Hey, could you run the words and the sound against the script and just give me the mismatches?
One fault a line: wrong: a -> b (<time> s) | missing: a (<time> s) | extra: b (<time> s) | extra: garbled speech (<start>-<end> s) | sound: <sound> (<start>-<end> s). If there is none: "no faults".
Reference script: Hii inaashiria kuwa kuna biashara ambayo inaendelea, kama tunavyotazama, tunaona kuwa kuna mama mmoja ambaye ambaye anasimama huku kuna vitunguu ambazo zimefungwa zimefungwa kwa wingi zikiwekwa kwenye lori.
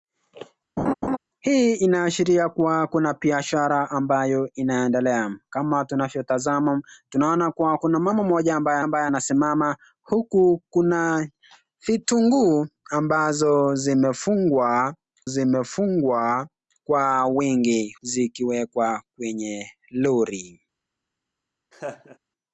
sound: laugh (0.8-1.2 s)
sound: laugh (21.7-22.2 s)